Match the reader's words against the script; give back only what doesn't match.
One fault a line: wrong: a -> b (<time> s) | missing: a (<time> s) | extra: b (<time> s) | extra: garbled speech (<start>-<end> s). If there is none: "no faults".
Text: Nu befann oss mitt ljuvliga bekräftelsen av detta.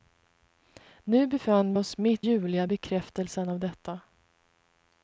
no faults